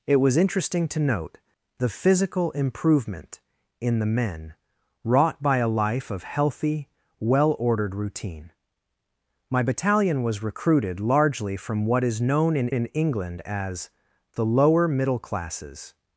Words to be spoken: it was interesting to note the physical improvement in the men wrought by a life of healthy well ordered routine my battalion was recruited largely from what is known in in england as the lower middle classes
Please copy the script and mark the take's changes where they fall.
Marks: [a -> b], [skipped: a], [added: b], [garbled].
it was interesting to note the physical improvement in the men wrought by a life of healthy well ordered routine my battalion was recruited largely from what is known in in england as the lower middle classes